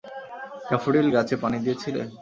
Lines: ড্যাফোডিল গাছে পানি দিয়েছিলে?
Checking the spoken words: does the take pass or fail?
pass